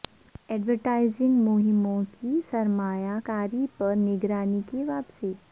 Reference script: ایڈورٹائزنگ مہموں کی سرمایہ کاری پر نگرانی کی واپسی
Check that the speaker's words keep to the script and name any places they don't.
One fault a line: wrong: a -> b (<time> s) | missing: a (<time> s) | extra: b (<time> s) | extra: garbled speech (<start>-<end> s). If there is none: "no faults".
no faults